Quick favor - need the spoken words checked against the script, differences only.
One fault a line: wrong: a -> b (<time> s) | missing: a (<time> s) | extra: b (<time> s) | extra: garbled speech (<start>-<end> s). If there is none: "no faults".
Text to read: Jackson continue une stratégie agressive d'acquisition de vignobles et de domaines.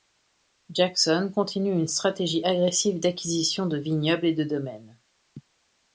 no faults